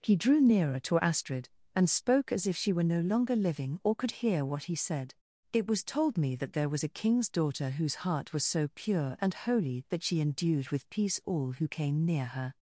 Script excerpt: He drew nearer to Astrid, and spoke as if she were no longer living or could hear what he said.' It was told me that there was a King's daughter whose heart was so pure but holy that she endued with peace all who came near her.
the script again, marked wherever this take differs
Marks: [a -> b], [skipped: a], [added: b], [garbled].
He drew nearer to Astrid, and spoke as if she were no longer living or could hear what he said.' It was told me that there was a King's daughter whose heart was so pure [but -> and] holy that she endued with peace all who came near her.